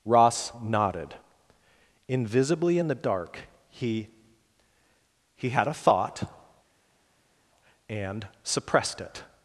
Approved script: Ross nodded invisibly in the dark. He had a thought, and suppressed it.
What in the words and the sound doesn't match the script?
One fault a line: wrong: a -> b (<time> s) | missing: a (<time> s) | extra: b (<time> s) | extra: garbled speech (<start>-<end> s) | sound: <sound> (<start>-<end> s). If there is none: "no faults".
extra: He (5.3 s)